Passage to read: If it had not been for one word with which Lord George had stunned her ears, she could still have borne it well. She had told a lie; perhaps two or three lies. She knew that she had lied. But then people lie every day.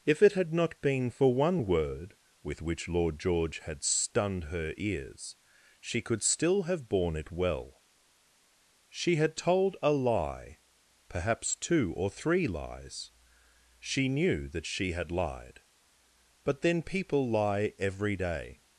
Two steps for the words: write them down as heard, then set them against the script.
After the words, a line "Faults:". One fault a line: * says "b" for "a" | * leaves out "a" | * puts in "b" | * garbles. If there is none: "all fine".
If it had not been for one word with which Lord George had stunned her ears, she could still have borne it well. She had told a lie; perhaps two or three lies. She knew that she had lied. But then people lie every day.
Faults:
all fine